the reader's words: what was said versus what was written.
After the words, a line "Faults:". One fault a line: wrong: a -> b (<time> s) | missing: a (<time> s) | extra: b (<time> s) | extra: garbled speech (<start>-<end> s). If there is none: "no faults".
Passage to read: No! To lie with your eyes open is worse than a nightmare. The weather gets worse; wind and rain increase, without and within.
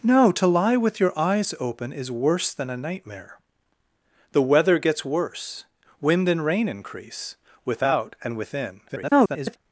No! To lie with your eyes open is worse than a nightmare. The weather gets worse; wind and rain increase, without and within. [garbled]
Faults:
extra: garbled speech (8.9-9.6 s)